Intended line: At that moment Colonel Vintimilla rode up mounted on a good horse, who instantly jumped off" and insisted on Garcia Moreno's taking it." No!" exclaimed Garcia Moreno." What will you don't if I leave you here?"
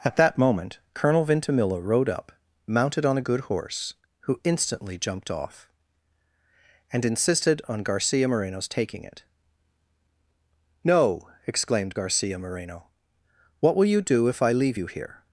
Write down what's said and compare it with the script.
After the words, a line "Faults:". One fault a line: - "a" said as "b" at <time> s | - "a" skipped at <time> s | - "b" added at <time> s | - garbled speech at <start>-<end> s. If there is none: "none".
At that moment Colonel Vintimilla rode up mounted on a good horse, who instantly jumped off" and insisted on Garcia Moreno's taking it." No!" exclaimed Garcia Moreno." What will you do if I leave you here?"
Faults:
- "don't" said as "do" at 14.0 s